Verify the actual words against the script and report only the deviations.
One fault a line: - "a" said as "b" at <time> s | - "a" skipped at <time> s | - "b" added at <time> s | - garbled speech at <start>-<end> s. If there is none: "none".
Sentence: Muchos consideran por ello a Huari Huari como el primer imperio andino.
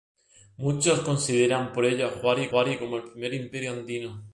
none